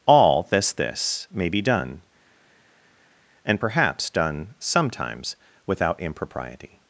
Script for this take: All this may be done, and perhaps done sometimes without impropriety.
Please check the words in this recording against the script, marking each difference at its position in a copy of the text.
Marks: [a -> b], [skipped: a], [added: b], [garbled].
All this [added: this] may be done, and perhaps done sometimes without impropriety.